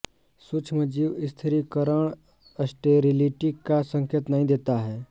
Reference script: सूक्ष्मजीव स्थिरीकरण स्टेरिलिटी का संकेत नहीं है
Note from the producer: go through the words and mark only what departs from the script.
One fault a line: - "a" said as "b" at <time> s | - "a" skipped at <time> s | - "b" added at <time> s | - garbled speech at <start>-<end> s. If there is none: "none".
- "देता" added at 4.5 s